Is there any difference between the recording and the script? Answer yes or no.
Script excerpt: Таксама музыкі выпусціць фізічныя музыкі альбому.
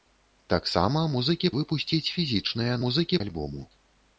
no